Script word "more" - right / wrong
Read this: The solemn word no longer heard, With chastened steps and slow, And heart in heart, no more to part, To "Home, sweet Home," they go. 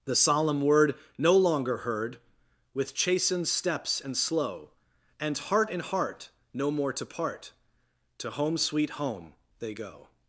right